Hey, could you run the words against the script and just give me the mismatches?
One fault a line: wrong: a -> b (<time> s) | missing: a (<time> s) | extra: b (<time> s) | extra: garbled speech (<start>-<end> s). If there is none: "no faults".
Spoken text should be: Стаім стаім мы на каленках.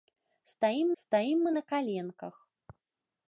no faults